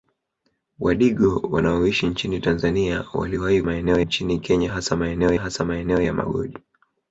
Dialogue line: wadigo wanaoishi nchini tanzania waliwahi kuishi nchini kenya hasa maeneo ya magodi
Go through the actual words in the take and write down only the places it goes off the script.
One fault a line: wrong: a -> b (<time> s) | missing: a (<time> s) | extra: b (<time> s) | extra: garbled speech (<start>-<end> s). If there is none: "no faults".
wrong: kuishi -> maeneo (3.6 s)
extra: hasa maeneo (5.4 s)